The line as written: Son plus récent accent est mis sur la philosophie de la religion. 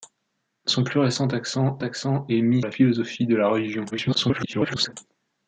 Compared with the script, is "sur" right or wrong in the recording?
wrong